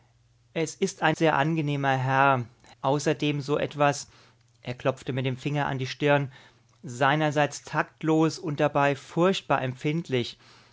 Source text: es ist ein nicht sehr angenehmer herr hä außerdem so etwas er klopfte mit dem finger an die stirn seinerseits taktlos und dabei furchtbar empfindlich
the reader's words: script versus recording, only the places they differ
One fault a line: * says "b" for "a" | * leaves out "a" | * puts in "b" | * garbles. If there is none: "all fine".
* leaves out "nicht"
* leaves out "hä"